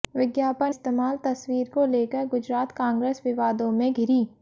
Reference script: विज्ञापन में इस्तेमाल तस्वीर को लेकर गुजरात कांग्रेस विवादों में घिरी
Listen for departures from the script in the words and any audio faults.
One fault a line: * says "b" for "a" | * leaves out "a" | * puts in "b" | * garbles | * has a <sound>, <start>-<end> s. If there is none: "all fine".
* leaves out "में"